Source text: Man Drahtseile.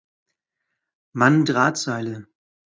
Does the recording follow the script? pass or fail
pass